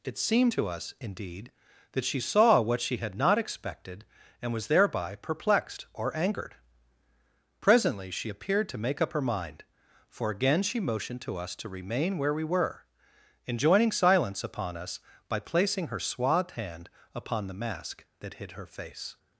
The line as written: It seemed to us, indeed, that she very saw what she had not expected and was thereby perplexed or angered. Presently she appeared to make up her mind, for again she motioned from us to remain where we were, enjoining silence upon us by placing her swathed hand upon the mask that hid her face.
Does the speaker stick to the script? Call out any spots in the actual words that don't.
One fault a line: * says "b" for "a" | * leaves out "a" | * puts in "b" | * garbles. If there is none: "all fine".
* leaves out "very"
* says "to" for "from"